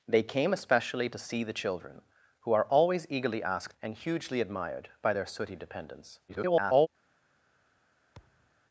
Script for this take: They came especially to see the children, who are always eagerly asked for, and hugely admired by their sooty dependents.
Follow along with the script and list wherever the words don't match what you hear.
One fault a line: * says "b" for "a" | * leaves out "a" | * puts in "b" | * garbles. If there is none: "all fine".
* leaves out "for"
* garbles